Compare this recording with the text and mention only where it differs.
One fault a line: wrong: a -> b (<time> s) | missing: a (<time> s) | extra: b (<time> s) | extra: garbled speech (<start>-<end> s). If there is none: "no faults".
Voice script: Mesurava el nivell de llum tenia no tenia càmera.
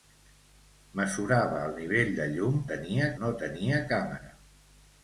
no faults